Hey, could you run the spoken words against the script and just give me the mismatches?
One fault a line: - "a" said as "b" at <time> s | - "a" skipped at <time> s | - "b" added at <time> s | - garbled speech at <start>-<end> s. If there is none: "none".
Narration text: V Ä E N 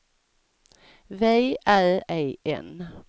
none